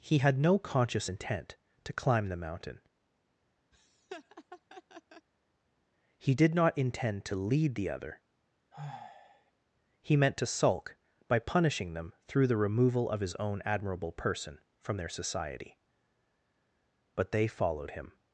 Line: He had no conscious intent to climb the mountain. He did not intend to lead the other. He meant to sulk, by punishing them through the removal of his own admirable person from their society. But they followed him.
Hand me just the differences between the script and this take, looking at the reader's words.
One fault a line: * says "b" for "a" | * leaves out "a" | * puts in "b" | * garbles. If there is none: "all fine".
all fine